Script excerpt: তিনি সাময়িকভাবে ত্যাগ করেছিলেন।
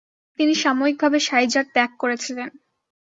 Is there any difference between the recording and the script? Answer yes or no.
yes